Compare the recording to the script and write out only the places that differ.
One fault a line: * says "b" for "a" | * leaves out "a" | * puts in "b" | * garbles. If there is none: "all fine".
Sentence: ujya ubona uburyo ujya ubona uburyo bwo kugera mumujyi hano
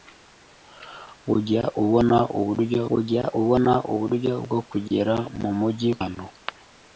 all fine